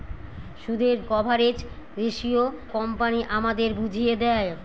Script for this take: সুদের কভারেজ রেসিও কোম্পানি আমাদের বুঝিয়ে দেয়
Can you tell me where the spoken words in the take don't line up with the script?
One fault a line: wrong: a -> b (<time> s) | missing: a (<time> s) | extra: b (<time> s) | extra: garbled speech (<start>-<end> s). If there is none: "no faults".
no faults